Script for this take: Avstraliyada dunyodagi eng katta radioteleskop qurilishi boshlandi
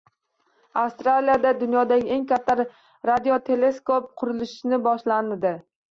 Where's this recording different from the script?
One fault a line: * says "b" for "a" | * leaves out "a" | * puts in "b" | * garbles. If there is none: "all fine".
all fine